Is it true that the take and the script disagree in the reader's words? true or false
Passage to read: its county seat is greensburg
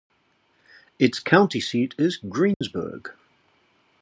false